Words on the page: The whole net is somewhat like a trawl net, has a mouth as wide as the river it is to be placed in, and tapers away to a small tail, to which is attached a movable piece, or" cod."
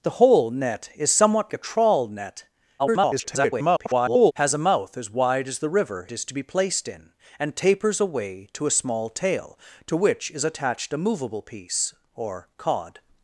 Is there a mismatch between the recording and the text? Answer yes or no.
yes